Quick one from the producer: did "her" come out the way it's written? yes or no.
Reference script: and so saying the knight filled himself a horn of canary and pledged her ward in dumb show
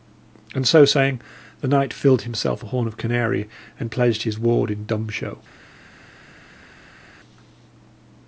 no